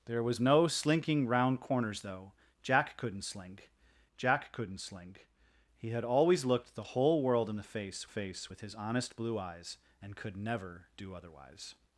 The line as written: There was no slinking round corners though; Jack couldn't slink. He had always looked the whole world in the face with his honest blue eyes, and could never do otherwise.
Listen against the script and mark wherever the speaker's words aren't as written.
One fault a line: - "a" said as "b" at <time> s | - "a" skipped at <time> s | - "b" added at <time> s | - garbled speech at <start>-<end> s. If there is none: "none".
- "Jack couldn't slink" added at 4.2 s
- "face" added at 8.0 s